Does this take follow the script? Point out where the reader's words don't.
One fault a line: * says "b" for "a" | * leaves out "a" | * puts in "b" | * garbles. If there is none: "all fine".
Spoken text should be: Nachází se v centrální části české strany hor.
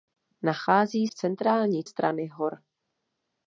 * leaves out "se"
* leaves out "části české"